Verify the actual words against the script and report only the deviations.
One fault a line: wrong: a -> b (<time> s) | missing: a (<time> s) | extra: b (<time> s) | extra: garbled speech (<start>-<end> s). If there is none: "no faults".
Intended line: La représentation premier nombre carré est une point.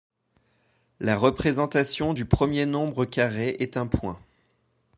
extra: du (2.1 s)
wrong: une -> un (3.8 s)